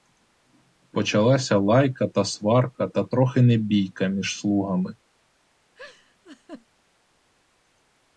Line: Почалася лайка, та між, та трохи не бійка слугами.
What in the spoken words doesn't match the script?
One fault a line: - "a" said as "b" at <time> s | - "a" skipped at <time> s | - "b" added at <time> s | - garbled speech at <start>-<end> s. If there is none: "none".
- "між" said as "сварка" at 2.2 s
- "між" added at 4.1 s